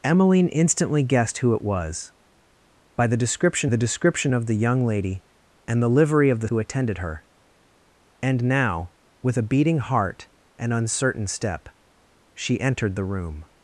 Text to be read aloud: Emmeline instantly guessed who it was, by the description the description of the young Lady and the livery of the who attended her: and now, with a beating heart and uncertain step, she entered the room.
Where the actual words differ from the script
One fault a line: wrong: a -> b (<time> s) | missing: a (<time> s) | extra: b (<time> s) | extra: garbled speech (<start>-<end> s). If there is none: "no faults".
no faults